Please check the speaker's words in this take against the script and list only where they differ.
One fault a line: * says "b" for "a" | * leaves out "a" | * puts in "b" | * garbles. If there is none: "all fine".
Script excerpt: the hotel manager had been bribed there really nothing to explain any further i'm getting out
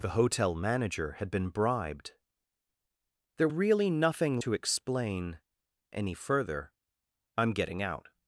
all fine